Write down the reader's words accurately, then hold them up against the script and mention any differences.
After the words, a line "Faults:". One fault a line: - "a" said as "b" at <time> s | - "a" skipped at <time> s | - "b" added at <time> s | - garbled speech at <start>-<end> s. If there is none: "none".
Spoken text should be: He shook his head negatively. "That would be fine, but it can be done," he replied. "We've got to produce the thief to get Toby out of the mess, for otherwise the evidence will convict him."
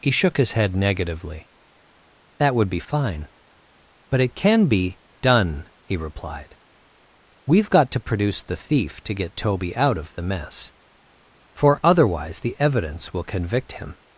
He shook his head negatively. "That would be fine, but it can be done," he replied. "We've got to produce the thief to get Toby out of the mess, for otherwise the evidence will convict him."
Faults:
none